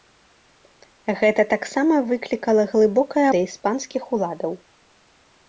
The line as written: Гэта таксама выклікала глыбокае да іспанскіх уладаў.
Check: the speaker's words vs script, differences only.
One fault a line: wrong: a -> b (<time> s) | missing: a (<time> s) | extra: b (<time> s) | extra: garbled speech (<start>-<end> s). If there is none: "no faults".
no faults